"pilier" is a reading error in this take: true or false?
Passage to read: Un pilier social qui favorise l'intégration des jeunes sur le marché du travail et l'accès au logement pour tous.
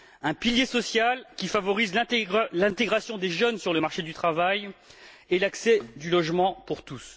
false